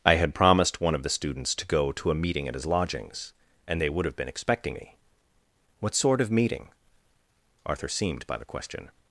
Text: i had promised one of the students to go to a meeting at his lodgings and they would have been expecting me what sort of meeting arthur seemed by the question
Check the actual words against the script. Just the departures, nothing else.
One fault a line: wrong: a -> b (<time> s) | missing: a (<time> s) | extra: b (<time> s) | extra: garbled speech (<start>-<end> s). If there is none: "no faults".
no faults